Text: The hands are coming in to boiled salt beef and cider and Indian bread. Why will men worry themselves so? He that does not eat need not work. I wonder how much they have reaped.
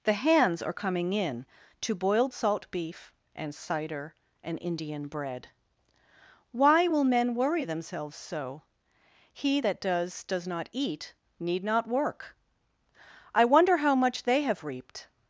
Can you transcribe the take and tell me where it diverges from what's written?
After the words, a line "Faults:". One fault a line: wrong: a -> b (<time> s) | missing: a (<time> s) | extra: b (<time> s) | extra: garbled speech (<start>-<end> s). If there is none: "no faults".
The hands are coming in to boiled salt beef and cider and Indian bread. Why will men worry themselves so? He that does does not eat need not work. I wonder how much they have reaped.
Faults:
extra: does (10.2 s)